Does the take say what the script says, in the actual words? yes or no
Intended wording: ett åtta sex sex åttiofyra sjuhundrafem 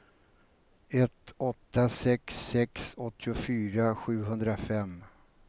yes